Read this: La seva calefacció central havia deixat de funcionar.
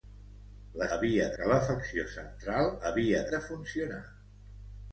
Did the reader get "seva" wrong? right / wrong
wrong